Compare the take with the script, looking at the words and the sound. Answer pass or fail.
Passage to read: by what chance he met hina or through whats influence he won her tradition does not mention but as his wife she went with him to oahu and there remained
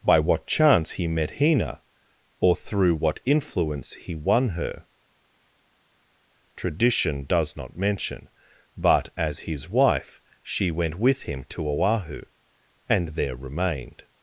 fail